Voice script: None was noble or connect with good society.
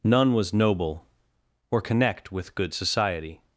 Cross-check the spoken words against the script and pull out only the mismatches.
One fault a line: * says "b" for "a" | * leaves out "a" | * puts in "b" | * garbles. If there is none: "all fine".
all fine